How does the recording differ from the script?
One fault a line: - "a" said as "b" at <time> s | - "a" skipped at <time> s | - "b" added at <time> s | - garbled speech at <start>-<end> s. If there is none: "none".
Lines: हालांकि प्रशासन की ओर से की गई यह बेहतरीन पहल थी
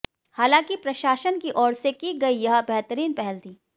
none